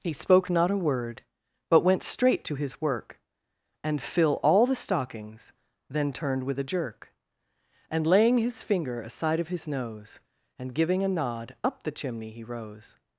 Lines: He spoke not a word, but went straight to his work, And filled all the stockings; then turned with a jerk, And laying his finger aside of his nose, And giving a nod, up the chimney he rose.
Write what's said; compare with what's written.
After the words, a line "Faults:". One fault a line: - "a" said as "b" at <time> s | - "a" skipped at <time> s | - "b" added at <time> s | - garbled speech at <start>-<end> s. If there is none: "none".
He spoke not a word, but went straight to his work, And fill all the stockings; then turned with a jerk, And laying his finger aside of his nose, And giving a nod, up the chimney he rose.
Faults:
- "filled" said as "fill" at 4.0 s